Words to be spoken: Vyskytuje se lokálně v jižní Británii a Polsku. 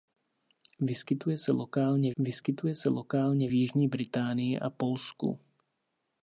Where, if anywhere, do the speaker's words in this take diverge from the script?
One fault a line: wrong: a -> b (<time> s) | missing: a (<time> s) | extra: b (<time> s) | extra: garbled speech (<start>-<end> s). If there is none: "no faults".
extra: vyskytuje se lokálně (2.2 s)